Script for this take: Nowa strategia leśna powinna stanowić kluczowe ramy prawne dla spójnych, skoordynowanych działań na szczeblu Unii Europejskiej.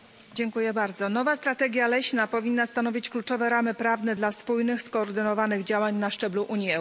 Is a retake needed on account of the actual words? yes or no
no